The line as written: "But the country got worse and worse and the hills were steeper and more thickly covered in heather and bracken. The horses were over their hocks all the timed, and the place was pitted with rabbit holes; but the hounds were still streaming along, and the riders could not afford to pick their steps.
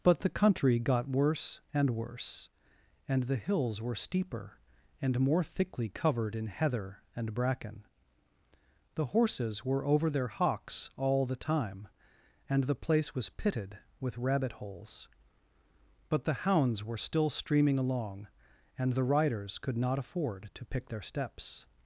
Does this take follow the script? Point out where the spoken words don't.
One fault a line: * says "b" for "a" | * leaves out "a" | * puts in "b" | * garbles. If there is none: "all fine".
* says "time" for "timed"